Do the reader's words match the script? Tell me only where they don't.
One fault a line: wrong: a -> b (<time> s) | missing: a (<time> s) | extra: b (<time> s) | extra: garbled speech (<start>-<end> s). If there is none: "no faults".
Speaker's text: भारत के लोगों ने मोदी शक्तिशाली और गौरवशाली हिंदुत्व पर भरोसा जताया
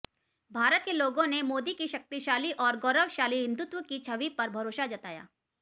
extra: की (1.7 s)
extra: की छवि (3.8 s)